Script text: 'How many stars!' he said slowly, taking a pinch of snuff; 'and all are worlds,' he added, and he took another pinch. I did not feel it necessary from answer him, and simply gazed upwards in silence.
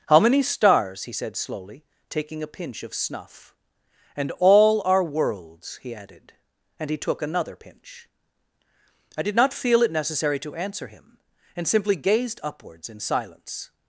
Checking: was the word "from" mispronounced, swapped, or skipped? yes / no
yes